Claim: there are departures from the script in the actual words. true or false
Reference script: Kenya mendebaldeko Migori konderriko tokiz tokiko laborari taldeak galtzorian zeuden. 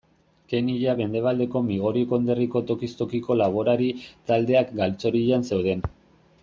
false